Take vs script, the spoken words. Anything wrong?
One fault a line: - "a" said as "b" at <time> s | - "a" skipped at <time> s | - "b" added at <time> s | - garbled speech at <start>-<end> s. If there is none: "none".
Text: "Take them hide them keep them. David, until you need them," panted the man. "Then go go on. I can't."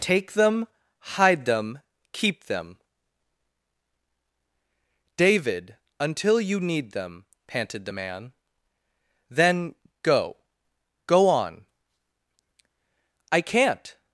none